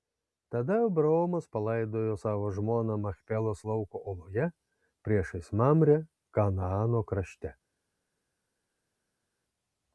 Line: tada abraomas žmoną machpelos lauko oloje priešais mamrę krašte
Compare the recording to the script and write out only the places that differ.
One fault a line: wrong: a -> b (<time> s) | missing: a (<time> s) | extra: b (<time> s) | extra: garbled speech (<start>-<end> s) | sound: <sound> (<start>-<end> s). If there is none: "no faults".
extra: palaidojo savo (1.6 s)
extra: kanaano (6.4 s)